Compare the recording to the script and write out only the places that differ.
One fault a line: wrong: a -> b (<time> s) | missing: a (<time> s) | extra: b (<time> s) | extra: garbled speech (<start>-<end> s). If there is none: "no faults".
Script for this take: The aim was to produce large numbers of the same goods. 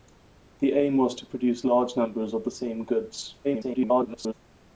extra: garbled speech (3.4-4.3 s)